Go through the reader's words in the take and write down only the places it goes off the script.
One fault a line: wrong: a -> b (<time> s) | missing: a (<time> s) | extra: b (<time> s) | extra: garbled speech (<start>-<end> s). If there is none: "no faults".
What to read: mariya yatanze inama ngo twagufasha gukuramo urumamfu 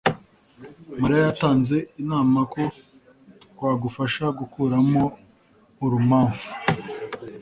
wrong: ngo -> ko (2.5 s)